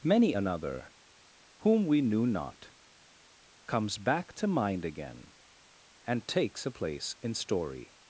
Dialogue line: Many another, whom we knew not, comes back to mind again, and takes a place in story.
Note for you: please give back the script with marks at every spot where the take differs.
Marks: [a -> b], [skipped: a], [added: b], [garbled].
Many another, whom we knew not, comes back to mind again, and takes a place in story.